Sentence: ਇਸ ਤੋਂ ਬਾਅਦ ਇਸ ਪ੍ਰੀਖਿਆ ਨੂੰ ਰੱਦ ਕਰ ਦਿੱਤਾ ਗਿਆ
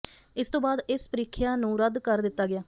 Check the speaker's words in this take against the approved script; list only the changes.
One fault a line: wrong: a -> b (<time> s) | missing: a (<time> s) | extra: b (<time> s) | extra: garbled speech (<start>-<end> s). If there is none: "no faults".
no faults